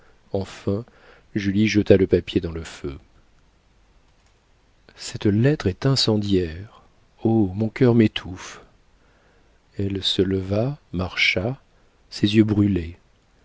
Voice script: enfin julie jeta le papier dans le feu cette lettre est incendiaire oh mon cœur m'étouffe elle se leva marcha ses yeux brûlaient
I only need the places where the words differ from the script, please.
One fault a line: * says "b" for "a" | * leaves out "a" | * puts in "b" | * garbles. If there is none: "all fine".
all fine